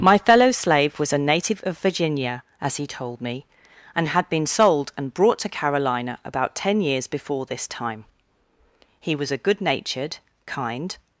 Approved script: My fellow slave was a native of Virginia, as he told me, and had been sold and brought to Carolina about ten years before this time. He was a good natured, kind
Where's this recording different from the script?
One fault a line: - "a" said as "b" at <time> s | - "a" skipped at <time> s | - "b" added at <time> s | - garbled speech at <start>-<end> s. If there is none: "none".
none